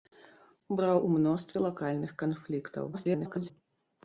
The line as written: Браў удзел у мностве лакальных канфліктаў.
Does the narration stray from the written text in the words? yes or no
yes